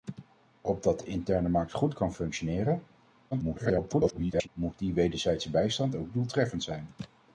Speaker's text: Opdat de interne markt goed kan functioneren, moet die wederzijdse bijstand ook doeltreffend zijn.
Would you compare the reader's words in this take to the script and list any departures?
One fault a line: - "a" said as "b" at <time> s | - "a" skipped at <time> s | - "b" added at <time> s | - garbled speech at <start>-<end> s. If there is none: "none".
- garbled speech at 3.3-4.5 s